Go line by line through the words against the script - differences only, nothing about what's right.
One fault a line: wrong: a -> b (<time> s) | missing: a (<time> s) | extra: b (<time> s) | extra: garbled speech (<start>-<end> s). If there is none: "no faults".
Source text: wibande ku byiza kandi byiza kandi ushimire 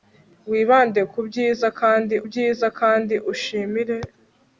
no faults